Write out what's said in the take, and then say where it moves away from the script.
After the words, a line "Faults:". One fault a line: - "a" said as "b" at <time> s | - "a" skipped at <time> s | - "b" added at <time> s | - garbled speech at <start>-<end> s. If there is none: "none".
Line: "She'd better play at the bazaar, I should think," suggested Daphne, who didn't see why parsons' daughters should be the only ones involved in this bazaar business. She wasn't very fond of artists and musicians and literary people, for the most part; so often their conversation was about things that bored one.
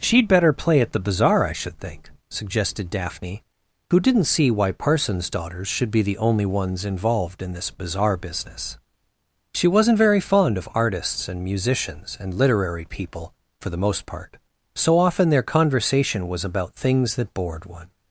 "She'd better play at the bazaar, I should think," suggested Daphne, who didn't see why parsons' daughters should be the only ones involved in this bazaar business. She wasn't very fond of artists and musicians and literary people, for the most part; so often their conversation was about things that bored one.
Faults:
none